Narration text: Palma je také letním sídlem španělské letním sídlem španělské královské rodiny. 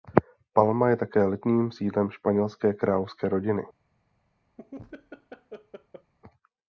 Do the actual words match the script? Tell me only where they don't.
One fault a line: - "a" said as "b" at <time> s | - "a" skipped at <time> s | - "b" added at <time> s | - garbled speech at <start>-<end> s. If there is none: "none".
- "letním sídlem španělské" skipped at 2.7 s